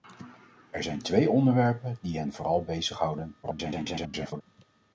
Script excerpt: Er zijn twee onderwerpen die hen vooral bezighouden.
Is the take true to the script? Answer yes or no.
no